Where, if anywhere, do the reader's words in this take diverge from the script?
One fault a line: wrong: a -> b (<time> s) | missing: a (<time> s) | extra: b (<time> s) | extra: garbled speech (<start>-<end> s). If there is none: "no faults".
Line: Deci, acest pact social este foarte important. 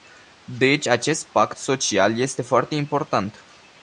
no faults